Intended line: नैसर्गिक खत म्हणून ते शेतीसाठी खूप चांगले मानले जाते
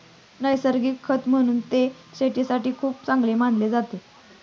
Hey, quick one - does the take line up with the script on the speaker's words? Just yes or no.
yes